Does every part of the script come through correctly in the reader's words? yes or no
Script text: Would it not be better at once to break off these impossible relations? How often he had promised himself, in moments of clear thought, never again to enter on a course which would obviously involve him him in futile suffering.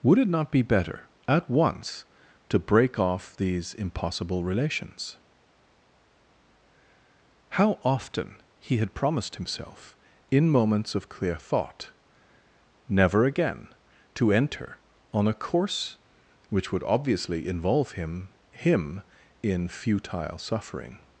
yes